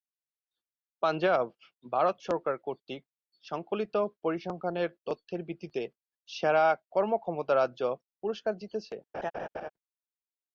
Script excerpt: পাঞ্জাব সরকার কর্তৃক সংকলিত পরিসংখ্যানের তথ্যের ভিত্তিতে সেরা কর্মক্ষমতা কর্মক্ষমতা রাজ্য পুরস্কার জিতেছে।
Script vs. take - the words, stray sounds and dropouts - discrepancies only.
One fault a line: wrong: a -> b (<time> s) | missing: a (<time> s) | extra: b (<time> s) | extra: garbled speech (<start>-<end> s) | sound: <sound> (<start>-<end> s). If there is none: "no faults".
extra: ভারত (1.9 s)
missing: কর্মক্ষমতা (7.5 s)
sound: laugh (9.1-9.7 s)